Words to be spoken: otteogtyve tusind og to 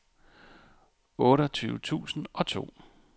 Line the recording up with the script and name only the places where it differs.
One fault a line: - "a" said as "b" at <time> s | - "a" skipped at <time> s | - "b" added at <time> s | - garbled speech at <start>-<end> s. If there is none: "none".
none